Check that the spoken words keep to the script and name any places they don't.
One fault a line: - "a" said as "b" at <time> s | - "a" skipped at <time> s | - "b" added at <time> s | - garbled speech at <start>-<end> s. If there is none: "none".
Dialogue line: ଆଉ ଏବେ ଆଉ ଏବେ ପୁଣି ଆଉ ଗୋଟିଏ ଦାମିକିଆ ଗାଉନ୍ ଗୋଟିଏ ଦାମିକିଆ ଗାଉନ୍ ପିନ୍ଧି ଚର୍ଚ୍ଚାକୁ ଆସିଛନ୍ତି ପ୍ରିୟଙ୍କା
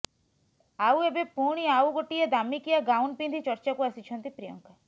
- "ଆଉ ଏବେ" skipped at 1.2 s
- "ଗୋଟିଏ ଦାମିକିଆ ଗାଉନ୍" skipped at 3.2 s